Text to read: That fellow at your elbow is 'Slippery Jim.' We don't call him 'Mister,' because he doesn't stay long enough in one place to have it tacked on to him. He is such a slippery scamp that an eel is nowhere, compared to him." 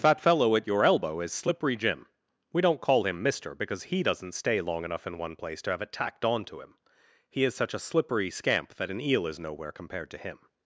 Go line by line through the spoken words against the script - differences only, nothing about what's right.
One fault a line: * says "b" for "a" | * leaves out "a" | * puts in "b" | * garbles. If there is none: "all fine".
all fine